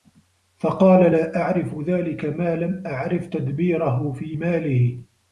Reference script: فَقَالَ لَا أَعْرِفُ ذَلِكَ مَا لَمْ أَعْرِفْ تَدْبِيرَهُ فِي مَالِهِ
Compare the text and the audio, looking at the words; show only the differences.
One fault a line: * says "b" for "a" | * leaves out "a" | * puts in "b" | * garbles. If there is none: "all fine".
all fine